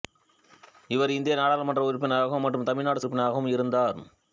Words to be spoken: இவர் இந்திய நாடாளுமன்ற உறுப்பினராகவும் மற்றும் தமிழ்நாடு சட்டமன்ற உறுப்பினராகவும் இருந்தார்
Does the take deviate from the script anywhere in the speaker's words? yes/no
yes